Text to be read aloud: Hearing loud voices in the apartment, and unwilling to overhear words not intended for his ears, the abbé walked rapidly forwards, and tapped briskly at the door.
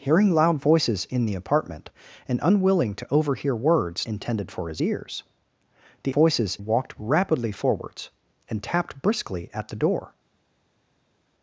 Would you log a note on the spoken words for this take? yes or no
yes